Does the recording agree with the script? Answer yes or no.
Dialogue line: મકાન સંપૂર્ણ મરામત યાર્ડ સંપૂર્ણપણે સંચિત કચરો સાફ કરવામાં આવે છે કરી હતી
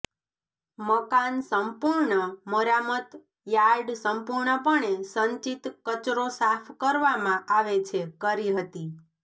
yes